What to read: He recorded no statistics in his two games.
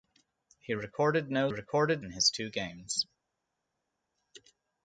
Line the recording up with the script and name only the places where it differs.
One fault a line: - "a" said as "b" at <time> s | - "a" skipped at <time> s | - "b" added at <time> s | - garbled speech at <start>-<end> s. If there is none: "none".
- "statistics" said as "recorded" at 1.5 s